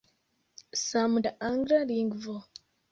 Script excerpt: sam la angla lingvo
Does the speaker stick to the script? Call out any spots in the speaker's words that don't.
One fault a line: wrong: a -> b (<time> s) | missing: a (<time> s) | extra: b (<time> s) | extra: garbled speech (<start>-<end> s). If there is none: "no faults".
no faults